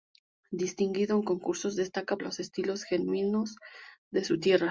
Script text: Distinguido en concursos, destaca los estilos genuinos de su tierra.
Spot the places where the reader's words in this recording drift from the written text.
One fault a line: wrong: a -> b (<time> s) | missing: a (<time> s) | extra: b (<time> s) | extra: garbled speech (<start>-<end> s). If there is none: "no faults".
no faults